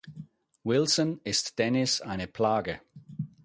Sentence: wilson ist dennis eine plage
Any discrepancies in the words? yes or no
no